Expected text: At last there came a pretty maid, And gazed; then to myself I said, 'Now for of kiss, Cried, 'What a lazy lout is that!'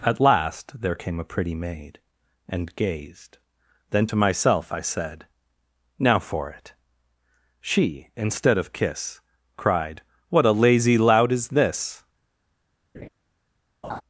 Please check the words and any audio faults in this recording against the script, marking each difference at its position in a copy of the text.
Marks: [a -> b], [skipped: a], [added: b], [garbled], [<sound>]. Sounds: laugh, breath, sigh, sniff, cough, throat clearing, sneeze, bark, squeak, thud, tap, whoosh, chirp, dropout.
At last there came a pretty maid, And gazed; then to myself I said, 'Now for [added: it She instead] of kiss, Cried, 'What a lazy lout is [that!' -> this] [laugh] [laugh]